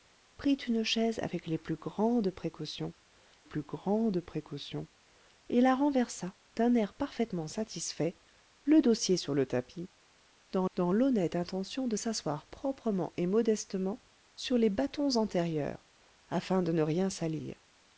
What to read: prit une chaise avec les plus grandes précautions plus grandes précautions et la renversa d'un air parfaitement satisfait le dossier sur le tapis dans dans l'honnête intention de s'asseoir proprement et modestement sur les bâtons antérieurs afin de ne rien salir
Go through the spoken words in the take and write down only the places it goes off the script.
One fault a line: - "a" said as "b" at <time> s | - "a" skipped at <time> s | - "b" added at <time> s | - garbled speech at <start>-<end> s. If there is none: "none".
none